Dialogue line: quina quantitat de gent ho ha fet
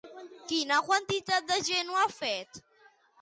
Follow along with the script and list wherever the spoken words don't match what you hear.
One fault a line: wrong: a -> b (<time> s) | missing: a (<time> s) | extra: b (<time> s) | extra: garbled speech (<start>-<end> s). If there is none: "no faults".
no faults